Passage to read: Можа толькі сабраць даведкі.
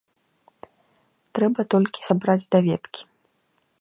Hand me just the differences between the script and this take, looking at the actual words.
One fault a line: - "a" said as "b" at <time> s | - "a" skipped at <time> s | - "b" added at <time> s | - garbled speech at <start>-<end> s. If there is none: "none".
- "Можа" said as "Трэба" at 1.4 s